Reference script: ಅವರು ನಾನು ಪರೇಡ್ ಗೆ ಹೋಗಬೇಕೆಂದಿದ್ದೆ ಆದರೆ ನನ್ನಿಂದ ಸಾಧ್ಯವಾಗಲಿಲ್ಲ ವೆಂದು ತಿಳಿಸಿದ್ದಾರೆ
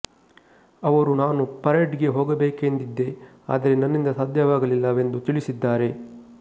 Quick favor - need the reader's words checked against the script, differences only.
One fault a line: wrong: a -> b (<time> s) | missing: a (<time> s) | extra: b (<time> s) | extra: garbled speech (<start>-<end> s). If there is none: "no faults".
no faults